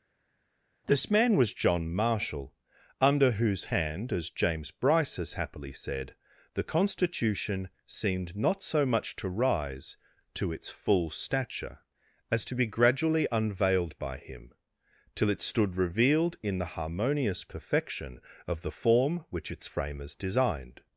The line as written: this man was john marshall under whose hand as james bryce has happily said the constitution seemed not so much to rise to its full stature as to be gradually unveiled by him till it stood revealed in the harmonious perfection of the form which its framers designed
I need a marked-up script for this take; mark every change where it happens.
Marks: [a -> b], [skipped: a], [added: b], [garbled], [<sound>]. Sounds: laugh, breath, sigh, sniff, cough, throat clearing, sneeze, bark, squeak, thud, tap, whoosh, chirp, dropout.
this man was john marshall under whose hand as james bryce has happily said the constitution seemed not so much to rise to its full stature as to be gradually unveiled by him till it stood revealed in the harmonious perfection of the form which its framers designed